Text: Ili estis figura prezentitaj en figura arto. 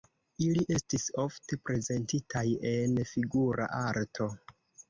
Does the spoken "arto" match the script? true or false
true